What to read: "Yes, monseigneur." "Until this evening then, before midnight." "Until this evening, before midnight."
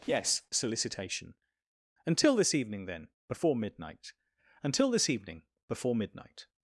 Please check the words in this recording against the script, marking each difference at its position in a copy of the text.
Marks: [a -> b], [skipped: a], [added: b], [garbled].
"Yes, [monseigneur." -> solicitation] "Until this evening then, before midnight." "Until this evening, before midnight."